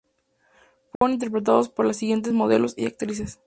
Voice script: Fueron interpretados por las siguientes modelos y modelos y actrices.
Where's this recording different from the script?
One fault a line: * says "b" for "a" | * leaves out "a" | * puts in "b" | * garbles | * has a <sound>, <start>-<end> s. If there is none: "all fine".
* has a dropout, 1.0-1.0 s
* leaves out "modelos y"